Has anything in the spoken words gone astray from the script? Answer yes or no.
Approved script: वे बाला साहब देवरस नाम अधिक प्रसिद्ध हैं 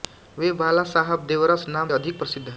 no